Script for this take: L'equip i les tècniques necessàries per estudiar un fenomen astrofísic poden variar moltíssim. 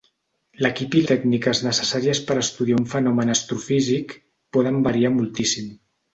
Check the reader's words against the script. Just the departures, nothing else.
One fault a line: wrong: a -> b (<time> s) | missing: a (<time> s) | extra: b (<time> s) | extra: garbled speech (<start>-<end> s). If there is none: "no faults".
missing: les (1.0 s)